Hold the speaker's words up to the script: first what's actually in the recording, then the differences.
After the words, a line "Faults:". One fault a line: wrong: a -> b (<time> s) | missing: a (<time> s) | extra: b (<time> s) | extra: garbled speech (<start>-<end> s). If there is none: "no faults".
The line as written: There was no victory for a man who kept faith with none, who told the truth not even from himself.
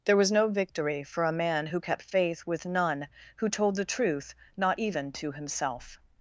There was no victory for a man who kept faith with none, who told the truth not even to himself.
Faults:
wrong: from -> to (5.1 s)